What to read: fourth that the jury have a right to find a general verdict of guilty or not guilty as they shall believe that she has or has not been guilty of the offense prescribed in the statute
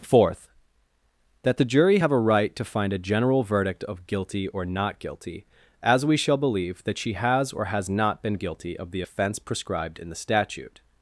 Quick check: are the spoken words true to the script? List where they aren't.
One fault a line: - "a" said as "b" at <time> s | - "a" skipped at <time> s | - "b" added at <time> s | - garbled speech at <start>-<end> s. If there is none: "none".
- "they" said as "we" at 6.0 s